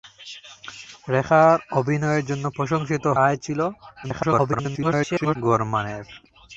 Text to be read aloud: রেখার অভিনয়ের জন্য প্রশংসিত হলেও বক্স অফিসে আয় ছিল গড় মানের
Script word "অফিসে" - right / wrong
wrong